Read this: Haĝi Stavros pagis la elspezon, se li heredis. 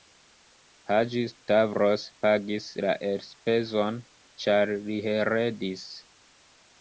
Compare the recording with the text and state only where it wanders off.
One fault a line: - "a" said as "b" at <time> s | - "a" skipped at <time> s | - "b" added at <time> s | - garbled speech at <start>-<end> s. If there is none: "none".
- "se" said as "ĉar" at 4.4 s